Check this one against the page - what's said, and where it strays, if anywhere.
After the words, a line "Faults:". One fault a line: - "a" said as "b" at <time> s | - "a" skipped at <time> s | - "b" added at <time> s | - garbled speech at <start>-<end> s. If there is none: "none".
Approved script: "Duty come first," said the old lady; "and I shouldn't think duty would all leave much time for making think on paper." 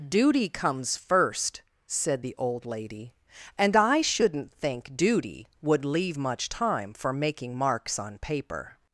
"Duty comes first," said the old lady; "and I shouldn't think duty would leave much time for making marks on paper."
Faults:
- "come" said as "comes" at 0.5 s
- "all" skipped at 5.8 s
- "think" said as "marks" at 7.6 s